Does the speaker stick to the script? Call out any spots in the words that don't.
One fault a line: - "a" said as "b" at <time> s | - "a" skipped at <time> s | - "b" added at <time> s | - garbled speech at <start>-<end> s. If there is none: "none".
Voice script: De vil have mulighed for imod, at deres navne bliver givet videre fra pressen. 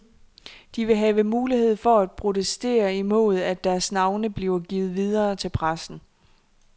- "at protestere" added at 2.0 s
- "fra" said as "til" at 5.3 s